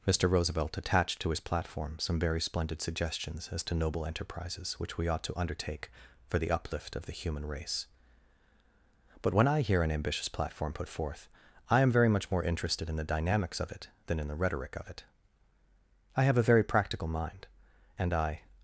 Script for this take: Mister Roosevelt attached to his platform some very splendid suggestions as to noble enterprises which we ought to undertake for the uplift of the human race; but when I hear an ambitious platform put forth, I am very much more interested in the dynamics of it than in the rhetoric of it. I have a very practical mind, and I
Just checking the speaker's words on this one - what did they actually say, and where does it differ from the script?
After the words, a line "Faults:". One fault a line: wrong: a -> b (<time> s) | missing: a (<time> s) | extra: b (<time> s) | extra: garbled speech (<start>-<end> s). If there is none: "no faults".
Mister Roosevelt attached to his platform some very splendid suggestions as to noble enterprises which we ought to undertake for the uplift of the human race; but when I hear an ambitious platform put forth, I am very much more interested in the dynamics of it than in the rhetoric of it. I have a very practical mind, and I
Faults:
no faults